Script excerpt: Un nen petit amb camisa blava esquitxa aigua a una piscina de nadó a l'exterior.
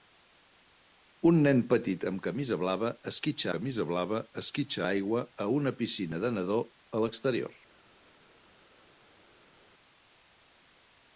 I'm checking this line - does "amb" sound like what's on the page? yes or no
yes